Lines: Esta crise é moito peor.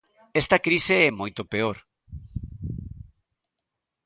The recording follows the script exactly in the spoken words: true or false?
true